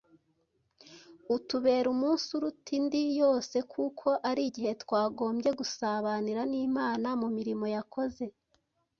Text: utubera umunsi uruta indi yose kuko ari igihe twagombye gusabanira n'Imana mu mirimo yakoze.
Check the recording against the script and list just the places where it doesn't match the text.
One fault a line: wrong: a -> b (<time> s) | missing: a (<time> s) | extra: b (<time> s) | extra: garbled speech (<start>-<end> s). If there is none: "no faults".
no faults